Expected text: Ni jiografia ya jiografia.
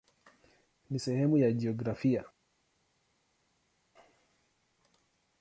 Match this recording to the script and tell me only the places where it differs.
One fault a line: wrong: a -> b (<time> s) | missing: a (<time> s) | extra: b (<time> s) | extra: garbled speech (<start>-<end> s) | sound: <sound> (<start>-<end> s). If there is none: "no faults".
wrong: jiografia -> sehemu (1.0 s)